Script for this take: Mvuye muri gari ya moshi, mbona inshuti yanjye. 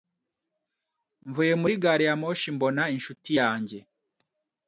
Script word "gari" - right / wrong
right